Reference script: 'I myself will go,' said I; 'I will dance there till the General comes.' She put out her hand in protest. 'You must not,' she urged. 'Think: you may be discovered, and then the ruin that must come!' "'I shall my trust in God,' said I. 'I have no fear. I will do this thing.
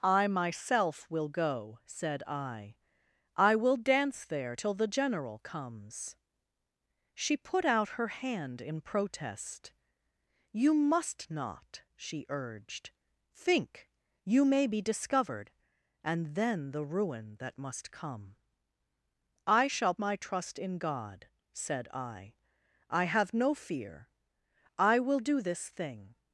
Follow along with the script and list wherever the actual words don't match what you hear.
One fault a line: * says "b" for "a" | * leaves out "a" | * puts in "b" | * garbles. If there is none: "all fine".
all fine